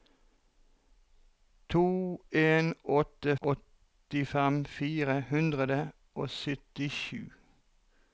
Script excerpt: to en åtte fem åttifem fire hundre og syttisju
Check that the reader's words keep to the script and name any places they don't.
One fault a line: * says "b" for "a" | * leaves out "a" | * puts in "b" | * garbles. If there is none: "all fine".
* leaves out "fem"